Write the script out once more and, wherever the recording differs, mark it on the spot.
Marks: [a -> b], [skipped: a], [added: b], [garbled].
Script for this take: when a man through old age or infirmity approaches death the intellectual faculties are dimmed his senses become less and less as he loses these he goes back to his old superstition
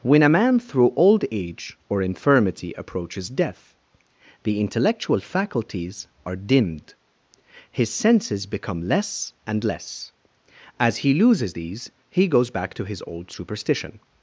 when a man through old age or infirmity approaches death the intellectual faculties are dimmed his senses become less and less as he loses these he goes back to his old superstition